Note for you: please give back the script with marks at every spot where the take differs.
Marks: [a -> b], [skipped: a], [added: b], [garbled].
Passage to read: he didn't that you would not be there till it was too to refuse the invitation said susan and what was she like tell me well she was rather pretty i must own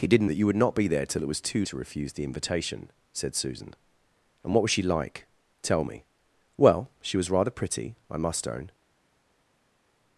he didn't that you would not be there till it was too to refuse the invitation said susan and what was she like tell me well she was rather pretty i must own